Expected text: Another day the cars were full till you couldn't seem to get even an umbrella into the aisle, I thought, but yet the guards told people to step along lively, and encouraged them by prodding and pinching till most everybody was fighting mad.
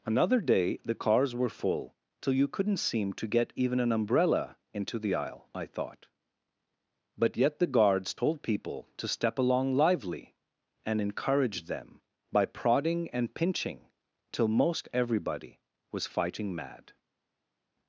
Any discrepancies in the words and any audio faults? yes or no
no